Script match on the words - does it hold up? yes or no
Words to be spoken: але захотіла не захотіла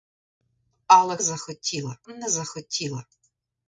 yes